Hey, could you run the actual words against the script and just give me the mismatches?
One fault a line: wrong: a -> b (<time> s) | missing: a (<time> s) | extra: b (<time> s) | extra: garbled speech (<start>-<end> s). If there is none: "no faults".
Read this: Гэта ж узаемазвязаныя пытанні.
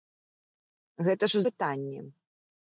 missing: узаемазвязаныя (1.4 s)